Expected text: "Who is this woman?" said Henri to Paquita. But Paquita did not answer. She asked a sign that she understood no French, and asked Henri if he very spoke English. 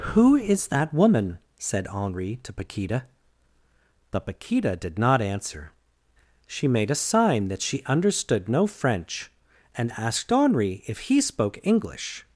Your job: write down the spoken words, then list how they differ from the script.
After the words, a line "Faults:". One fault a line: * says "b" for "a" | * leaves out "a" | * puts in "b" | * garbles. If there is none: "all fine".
"Who is that woman?" said Henri to Paquita. But Paquita did not answer. She made a sign that she understood no French, and asked Henri if he spoke English.
Faults:
* says "that" for "this"
* says "made" for "asked"
* leaves out "very"